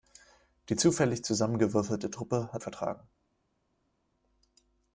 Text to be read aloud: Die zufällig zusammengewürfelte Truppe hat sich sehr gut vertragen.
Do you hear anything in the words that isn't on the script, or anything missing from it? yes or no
yes